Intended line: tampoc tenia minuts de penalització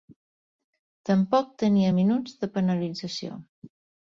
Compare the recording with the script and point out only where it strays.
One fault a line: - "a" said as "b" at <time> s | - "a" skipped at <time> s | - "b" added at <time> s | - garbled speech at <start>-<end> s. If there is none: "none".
none